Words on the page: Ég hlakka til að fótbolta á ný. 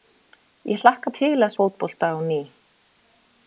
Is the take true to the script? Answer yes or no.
yes